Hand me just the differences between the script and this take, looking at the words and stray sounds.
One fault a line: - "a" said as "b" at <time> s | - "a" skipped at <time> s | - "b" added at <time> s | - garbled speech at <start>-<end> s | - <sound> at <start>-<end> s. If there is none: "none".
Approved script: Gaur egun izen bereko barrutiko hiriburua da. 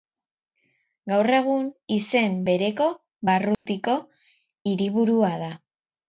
- dropout at 3.5-3.7 s